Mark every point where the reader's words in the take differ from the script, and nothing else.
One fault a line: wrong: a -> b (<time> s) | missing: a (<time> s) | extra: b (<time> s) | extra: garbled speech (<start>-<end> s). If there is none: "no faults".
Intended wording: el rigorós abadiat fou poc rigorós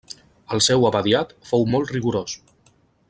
wrong: rigorós -> seu (0.7 s)
wrong: poc -> molt (1.8 s)